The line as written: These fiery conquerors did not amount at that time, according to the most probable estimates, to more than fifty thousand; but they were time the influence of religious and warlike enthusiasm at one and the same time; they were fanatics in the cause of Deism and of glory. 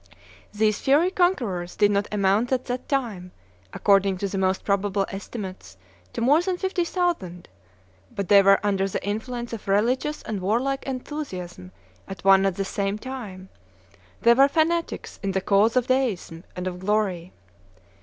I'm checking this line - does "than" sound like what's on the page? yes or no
yes